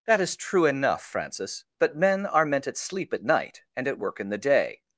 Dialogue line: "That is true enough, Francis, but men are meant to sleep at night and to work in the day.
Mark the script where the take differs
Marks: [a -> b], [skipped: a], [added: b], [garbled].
"That is true enough, Francis, but men are meant [to -> at] sleep at night and [to -> at] work in the day.